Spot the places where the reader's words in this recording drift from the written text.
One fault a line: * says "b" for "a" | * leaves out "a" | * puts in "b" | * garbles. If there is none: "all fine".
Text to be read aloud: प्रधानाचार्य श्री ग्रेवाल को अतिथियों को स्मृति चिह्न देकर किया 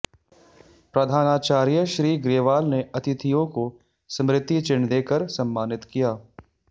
* says "ने" for "को"
* puts in "सम्मानित"